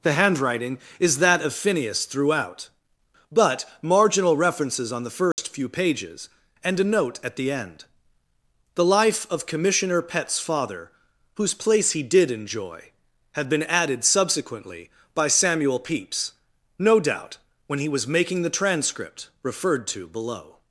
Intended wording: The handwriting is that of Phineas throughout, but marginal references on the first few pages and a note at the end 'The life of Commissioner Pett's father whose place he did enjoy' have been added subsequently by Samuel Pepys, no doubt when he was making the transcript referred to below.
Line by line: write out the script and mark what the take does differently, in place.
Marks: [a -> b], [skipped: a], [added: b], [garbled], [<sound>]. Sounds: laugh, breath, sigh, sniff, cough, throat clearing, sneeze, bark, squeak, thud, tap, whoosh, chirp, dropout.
The handwriting is that of Phineas throughout, but marginal references on the first [dropout] few pages and a note at the end 'The life of Commissioner Pett's father whose place he did enjoy' [have -> had] been added subsequently by Samuel Pepys, no doubt when he was making the transcript referred to below.